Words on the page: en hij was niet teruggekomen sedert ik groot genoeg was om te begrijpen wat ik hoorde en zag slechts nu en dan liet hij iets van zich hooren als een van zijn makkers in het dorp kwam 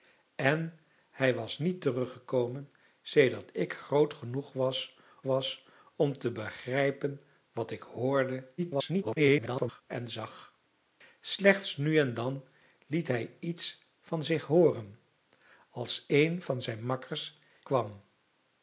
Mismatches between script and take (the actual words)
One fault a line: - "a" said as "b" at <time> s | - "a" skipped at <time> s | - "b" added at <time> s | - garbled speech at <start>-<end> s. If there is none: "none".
- "was" added at 5.2 s
- garbled speech at 8.6-9.8 s
- "in het dorp" skipped at 17.4 s